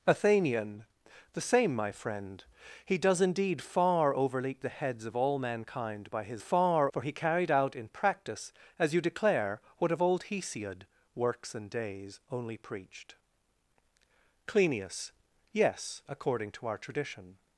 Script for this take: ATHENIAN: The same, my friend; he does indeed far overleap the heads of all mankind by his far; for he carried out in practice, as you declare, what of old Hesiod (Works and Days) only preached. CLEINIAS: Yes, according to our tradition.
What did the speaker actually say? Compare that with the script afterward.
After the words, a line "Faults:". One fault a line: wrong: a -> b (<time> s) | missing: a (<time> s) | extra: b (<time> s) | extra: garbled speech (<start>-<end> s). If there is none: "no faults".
ATHENIAN: The same, my friend; he does indeed far overleap the heads of all mankind by his far; for he carried out in practice, as you declare, what of old Hesiod (Works and Days) only preached. CLEINIAS: Yes, according to our tradition.
Faults:
no faults